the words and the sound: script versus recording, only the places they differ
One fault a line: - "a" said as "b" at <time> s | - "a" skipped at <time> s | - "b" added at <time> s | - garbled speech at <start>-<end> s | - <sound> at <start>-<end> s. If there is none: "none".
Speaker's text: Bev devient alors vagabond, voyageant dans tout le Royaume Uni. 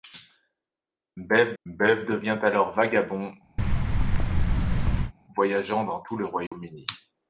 - "bev" added at 1.6 s
- thud at 3.6-5.1 s
- dropout at 6.5-6.5 s